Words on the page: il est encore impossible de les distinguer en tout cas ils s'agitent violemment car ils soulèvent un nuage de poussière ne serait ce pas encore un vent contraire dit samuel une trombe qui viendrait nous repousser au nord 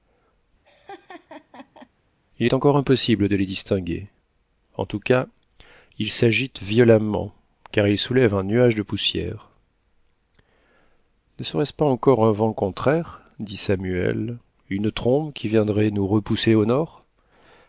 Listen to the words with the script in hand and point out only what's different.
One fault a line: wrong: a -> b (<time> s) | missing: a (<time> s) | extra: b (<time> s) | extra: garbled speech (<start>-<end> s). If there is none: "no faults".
no faults